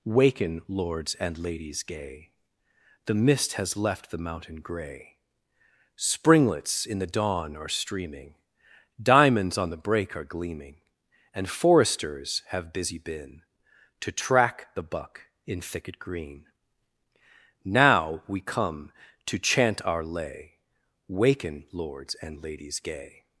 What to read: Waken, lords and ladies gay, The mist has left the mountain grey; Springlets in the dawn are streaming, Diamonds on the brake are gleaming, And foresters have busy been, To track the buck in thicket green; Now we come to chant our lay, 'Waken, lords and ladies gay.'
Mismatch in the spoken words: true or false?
false